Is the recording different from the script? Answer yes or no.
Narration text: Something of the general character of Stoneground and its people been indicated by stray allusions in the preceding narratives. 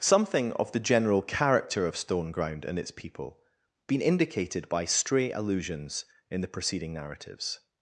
no